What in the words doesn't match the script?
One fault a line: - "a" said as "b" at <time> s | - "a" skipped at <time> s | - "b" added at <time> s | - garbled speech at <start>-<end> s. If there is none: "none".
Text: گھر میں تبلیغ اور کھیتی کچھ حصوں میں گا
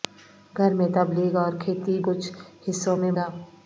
none